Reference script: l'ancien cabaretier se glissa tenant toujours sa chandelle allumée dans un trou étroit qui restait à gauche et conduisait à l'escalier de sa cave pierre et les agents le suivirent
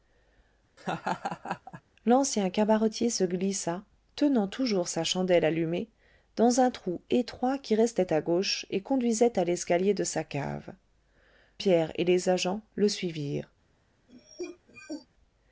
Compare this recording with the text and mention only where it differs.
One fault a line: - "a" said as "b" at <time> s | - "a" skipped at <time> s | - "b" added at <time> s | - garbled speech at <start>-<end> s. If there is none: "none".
none